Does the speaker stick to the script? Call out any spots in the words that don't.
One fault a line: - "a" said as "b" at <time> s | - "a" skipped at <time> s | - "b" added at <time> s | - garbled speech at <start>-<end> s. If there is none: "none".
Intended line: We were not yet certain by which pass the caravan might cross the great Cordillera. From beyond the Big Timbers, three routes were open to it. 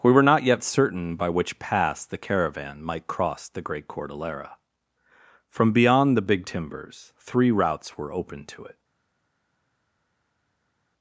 none